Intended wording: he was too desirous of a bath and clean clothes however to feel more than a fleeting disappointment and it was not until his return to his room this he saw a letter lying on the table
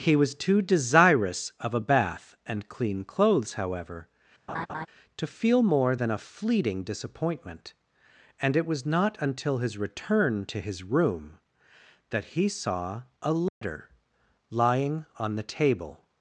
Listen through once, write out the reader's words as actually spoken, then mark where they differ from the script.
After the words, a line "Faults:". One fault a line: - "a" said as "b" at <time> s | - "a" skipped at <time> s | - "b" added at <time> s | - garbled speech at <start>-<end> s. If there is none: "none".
he was too desirous of a bath and clean clothes however to feel more than a fleeting disappointment and it was not until his return to his room that he saw a letter lying on the table
Faults:
- "this" said as "that" at 12.1 s